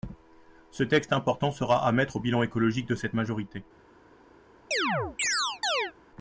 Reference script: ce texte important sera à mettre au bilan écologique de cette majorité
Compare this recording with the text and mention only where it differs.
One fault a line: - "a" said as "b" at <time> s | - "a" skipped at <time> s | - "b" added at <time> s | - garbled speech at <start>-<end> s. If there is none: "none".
none